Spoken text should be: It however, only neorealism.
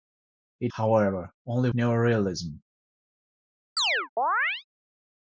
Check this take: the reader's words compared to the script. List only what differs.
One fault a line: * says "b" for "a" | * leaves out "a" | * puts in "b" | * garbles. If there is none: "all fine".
all fine